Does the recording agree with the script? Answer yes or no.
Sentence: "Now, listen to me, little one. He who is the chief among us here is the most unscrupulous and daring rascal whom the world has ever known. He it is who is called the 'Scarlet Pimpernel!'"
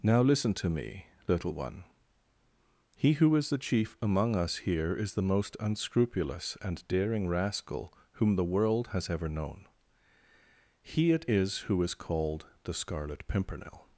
yes